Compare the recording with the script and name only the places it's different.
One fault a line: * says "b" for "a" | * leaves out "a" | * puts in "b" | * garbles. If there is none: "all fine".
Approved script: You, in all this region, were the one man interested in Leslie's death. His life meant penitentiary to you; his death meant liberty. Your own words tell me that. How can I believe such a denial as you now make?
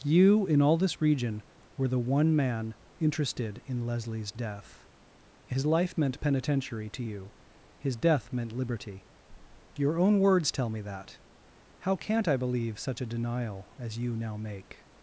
* says "can't" for "can"